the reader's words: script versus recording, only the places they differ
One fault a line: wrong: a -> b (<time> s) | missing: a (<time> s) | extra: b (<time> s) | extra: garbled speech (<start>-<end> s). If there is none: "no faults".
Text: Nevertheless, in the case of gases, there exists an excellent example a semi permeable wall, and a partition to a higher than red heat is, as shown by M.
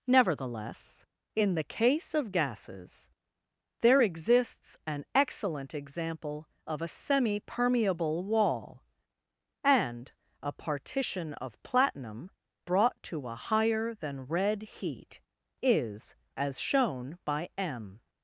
extra: of (6.7 s)
extra: of platinum brought (11.3 s)